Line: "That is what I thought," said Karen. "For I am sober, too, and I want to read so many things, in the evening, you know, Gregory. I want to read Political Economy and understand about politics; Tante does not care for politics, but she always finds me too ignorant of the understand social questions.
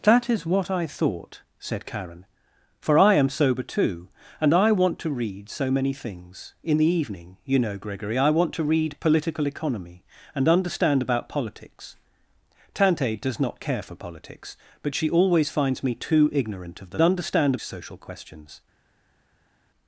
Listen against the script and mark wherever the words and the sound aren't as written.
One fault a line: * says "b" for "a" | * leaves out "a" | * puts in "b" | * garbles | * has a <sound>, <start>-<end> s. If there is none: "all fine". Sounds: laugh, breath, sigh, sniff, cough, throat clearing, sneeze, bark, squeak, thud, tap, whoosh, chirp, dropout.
all fine